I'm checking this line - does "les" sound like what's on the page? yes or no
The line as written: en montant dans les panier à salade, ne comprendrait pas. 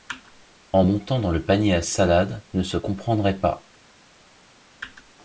no